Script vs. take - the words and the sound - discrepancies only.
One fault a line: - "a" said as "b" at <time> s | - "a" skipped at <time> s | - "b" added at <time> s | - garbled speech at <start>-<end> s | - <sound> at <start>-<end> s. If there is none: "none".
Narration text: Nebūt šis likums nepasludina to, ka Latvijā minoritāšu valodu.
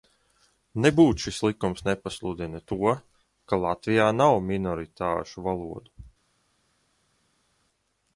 - "nav" added at 4.2 s